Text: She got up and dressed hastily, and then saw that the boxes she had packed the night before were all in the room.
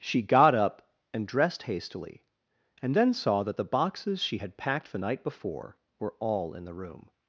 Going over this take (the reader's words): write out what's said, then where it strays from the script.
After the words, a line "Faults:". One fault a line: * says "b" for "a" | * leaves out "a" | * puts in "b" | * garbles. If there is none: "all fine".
She got up and dressed hastily, and then saw that the boxes she had packed the night before were all in the room.
Faults:
all fine